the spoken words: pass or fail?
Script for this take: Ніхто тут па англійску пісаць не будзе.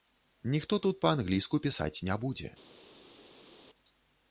pass